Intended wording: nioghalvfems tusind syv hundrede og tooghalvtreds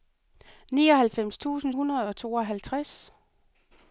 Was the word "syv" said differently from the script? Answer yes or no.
yes